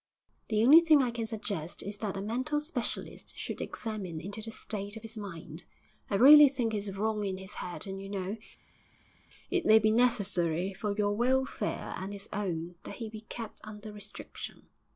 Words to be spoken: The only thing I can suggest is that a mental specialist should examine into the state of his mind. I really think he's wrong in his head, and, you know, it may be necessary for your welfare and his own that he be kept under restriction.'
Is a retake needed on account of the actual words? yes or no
no